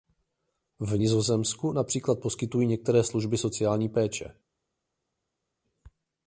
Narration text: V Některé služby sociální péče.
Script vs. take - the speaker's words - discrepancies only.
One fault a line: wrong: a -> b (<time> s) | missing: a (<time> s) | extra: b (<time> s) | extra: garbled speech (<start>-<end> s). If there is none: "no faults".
extra: Nizozemsku například poskytují (0.9 s)